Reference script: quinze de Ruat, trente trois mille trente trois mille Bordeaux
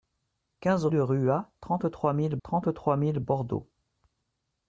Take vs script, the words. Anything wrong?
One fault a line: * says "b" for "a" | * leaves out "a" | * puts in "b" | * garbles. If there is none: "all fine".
all fine